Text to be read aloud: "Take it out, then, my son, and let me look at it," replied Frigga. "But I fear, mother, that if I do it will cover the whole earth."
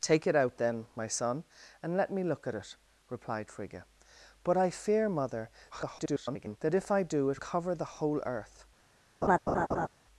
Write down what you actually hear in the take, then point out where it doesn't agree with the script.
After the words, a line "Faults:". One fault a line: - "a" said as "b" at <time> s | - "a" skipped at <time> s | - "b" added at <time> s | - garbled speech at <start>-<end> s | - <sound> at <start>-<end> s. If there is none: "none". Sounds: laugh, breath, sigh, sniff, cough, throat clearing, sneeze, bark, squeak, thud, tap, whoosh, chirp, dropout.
"Take it out, then, my son, and let me look at it," replied Frigga. "But I fear, mother, [garbled] that if I do it cover the whole earth."
Faults:
- garbled speech at 5.7-6.6 s
- "will" skipped at 7.4 s
- laugh at 9.2-9.9 s